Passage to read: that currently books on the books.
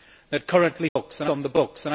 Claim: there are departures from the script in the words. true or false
false